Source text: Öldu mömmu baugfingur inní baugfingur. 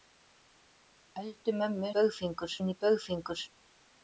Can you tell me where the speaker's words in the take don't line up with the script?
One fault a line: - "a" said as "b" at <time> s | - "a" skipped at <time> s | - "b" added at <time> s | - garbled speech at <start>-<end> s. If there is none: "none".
none